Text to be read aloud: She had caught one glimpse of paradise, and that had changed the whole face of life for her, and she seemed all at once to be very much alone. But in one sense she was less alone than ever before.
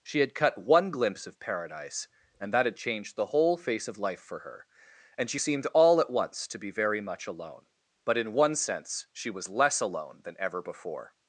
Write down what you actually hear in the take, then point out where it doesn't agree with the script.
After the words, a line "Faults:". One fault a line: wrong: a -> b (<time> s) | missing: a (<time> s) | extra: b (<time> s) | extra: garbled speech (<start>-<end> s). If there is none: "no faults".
She had cut one glimpse of paradise, and that had changed the whole face of life for her, and she seemed all at once to be very much alone. But in one sense she was less alone than ever before.
Faults:
wrong: caught -> cut (0.3 s)